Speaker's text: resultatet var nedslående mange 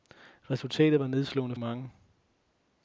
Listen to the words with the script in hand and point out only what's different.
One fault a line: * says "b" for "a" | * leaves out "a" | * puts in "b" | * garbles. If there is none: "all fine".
all fine